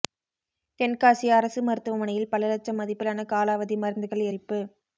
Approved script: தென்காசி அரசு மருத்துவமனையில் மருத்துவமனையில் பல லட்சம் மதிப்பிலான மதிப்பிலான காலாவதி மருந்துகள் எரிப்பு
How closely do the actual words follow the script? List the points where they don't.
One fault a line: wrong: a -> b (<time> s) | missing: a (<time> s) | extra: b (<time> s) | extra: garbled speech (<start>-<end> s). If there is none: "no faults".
missing: மருத்துவமனையில் (2.3 s)
missing: மதிப்பிலான (3.3 s)